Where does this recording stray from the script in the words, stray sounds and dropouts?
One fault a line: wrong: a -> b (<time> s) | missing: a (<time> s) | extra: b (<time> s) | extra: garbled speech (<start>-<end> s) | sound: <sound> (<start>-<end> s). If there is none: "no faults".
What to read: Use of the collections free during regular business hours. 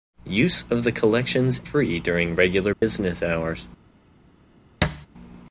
sound: dropout (2.7-2.8 s)
sound: thud (4.8-5.1 s)